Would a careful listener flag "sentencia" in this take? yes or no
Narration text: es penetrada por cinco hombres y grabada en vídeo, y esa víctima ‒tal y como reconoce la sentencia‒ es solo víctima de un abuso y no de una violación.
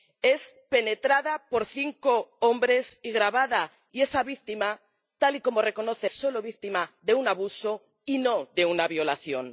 yes